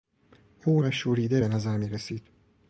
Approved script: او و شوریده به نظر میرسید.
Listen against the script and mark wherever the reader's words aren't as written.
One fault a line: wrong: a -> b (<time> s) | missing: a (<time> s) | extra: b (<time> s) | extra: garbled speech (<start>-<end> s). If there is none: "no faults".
no faults